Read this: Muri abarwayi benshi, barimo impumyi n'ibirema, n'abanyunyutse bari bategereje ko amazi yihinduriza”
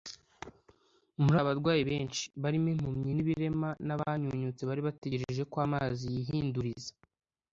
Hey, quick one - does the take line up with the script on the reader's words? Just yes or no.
yes